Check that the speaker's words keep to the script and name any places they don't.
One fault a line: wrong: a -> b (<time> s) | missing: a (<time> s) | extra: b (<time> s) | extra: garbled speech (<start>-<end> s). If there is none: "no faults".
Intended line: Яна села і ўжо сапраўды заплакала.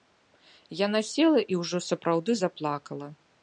no faults